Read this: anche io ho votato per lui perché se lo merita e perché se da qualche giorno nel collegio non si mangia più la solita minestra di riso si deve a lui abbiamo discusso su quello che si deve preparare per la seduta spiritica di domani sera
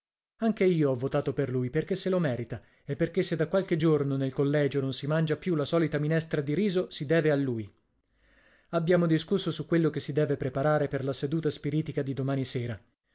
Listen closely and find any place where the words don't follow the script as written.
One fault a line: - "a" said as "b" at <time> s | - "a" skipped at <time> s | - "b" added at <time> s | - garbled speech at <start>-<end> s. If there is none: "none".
none